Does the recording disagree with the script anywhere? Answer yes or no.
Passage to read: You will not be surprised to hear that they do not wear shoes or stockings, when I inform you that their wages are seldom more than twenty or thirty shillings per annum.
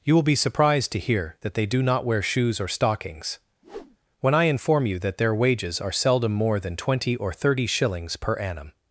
yes